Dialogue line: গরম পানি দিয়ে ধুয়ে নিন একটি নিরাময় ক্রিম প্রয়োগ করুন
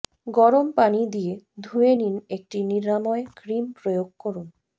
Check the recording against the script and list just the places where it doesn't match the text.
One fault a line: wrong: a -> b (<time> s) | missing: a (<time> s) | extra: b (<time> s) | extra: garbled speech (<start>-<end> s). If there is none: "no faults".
no faults